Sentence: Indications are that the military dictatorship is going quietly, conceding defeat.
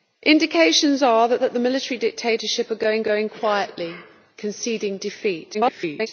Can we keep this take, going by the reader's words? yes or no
no